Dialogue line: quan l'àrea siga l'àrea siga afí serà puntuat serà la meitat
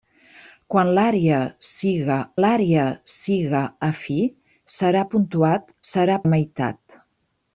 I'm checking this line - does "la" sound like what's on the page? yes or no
yes